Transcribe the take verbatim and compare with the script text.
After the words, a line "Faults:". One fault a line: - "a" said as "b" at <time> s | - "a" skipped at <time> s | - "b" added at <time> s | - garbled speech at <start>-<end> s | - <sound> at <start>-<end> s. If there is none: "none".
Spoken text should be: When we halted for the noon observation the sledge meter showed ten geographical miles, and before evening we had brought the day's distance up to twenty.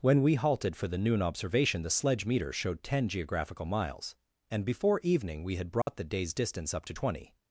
When we halted for the noon observation the sledge meter showed ten geographical miles, and before evening we had brought the day's distance up to twenty.
Faults:
- dropout at 5.8-5.9 s